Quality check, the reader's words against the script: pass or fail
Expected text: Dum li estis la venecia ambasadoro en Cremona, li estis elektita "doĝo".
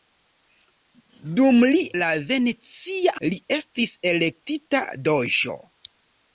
fail